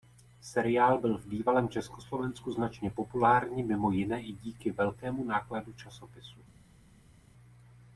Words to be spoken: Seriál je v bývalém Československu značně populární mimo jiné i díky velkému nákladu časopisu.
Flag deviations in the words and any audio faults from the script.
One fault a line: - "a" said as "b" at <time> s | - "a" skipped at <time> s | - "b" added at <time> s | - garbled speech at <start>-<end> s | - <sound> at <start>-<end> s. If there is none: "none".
- "je" said as "byl" at 0.9 s